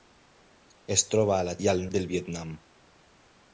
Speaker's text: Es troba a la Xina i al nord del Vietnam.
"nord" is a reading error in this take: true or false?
true